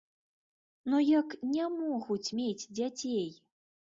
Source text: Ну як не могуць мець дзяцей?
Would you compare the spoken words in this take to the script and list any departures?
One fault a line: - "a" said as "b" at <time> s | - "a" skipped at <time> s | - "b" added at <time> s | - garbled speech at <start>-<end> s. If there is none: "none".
none